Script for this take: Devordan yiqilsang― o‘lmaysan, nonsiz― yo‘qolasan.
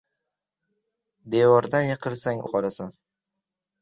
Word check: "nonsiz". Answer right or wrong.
wrong